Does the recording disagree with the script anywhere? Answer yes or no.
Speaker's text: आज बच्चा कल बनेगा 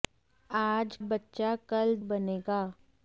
no